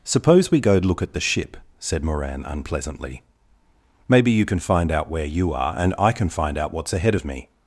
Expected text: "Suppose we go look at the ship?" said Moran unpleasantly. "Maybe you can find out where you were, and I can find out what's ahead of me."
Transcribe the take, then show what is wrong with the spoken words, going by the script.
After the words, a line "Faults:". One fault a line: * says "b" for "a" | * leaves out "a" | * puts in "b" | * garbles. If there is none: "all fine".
"Suppose we go look at the ship?" said Moran unpleasantly. "Maybe you can find out where you are, and I can find out what's ahead of me."
Faults:
* says "are" for "were"